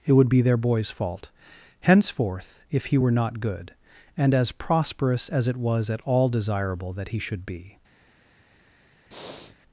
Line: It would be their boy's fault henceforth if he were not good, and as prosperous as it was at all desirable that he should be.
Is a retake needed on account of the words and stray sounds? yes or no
yes